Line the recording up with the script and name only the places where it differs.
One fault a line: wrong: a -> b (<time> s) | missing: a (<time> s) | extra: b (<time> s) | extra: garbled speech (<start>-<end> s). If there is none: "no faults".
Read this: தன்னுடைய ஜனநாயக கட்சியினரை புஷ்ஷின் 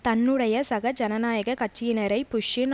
extra: சக (0.6 s)